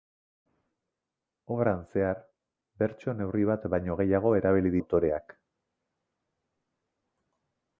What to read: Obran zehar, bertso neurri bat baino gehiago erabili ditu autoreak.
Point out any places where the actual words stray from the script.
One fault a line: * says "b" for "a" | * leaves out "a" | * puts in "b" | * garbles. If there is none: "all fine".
* leaves out "ditu"